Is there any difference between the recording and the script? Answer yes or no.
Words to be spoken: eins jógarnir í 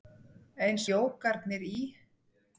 no